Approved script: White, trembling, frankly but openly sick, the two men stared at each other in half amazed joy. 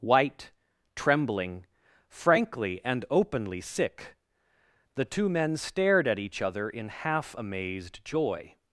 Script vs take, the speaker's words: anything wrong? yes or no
yes